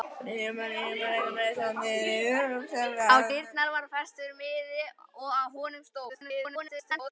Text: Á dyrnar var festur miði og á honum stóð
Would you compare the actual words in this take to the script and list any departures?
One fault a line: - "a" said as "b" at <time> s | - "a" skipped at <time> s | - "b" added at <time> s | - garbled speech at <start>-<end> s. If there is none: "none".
- garbled speech at 6.1-7.1 s